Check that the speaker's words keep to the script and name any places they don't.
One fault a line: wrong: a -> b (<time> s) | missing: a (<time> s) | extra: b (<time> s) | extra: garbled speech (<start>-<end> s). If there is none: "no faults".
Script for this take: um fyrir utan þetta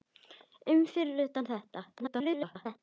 extra: garbled speech (2.0-2.8 s)